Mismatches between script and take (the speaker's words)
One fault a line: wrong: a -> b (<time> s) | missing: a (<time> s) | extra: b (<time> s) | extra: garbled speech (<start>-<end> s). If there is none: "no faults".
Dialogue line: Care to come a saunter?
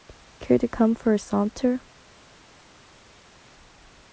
extra: for (0.9 s)